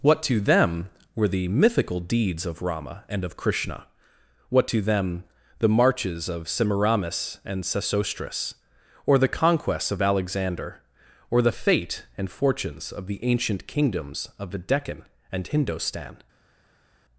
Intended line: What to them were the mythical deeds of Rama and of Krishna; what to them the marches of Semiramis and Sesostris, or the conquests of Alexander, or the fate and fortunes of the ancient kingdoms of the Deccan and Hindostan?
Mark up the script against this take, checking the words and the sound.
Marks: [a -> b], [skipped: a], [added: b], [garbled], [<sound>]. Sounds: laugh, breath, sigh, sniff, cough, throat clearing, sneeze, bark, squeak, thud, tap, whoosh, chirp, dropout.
What to them were the mythical deeds of Rama and of Krishna; what to them the marches of Semiramis and Sesostris, or the conquests of Alexander, or the fate and fortunes of the ancient kingdoms of the Deccan and Hindostan?